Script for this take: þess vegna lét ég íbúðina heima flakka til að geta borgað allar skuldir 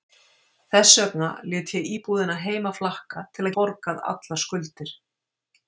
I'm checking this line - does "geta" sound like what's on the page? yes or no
no